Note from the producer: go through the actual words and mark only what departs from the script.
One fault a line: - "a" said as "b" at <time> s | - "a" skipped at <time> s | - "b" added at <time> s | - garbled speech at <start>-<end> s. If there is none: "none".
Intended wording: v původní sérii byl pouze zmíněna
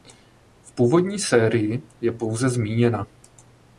- "byl" said as "je" at 2.0 s